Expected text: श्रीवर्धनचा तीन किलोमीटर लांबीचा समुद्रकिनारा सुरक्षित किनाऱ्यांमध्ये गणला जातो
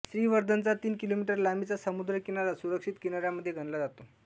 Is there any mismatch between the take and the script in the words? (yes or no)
no